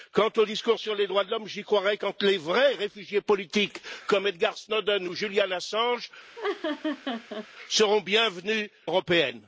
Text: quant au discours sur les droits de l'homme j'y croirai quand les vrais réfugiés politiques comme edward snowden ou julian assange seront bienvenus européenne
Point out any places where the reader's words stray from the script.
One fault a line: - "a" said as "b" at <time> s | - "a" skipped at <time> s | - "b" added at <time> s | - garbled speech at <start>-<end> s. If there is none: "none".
none